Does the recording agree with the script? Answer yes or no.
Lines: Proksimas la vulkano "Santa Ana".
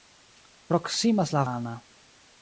no